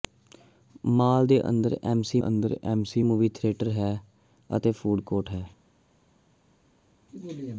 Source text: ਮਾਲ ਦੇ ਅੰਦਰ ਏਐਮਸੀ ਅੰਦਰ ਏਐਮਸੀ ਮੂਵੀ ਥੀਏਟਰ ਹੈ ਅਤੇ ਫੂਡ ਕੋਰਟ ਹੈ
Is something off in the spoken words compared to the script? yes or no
no